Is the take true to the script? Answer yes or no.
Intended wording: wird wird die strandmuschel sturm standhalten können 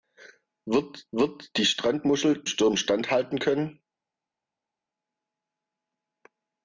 yes